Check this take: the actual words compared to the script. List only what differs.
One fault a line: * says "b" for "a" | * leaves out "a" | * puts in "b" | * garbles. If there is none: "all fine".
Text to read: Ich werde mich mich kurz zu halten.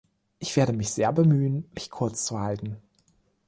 * puts in "sehr bemühen"